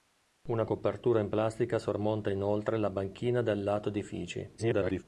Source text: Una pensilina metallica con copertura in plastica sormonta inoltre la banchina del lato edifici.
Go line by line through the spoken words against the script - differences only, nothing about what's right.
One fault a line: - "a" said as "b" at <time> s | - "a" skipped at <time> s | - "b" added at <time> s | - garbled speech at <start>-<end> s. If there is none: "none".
- "pensilina metallica con" skipped at 0.7 s
- garbled speech at 4.6-5.0 s